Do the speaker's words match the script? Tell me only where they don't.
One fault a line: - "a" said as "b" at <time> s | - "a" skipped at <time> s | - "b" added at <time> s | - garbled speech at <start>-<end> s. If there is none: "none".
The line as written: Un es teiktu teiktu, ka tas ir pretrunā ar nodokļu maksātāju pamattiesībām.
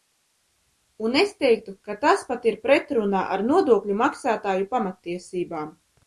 - "teiktu" skipped at 1.7 s
- "pat" added at 2.3 s